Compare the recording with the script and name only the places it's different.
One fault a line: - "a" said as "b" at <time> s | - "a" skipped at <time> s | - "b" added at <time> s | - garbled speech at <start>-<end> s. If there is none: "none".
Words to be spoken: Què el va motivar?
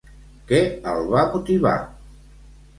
none